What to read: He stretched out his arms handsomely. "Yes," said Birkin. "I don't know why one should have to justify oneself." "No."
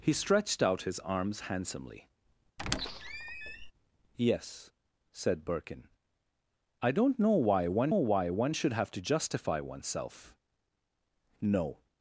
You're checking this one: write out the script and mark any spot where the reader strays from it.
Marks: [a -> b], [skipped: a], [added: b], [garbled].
He stretched out his arms handsomely. "Yes," said Birkin. "I don't know why one [added: why one] should have to justify oneself." "No."